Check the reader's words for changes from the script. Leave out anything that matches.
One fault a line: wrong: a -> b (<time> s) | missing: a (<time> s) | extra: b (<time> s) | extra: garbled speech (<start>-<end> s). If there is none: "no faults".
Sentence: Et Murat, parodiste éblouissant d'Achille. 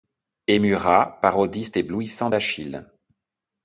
no faults